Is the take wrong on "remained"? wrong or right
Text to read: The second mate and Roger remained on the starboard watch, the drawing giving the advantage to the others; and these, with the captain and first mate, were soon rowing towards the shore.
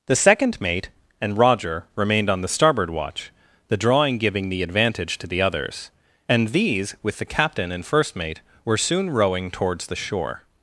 right